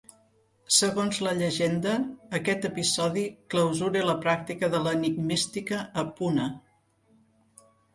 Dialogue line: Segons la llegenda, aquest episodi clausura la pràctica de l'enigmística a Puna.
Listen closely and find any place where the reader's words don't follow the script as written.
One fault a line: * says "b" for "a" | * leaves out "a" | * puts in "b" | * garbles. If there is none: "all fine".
all fine